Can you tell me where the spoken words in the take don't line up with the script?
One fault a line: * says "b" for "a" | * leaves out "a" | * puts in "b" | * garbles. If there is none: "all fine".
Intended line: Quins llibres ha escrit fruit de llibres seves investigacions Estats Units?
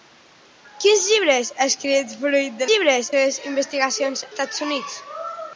all fine